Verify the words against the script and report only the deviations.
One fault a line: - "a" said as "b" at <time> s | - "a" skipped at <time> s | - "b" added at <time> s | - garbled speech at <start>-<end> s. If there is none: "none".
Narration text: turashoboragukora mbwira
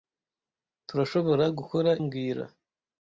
none